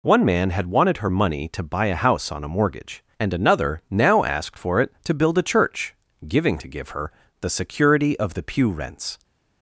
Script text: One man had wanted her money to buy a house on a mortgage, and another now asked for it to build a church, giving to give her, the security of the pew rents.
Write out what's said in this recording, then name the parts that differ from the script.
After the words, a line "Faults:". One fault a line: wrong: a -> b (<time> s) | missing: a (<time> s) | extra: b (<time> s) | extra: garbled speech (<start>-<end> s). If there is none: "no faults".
One man had wanted her money to buy a house on a mortgage, and another now asked for it to build a church, giving to give her, the security of the pew rents.
Faults:
no faults